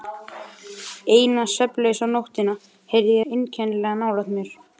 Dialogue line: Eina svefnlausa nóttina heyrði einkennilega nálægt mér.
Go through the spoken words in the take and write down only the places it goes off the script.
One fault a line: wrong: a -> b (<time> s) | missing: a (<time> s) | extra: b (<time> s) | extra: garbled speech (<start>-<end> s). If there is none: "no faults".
no faults